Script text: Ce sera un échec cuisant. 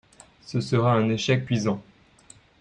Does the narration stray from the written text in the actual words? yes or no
no